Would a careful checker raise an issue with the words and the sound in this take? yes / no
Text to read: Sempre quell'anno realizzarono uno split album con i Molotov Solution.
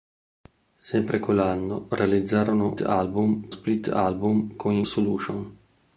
yes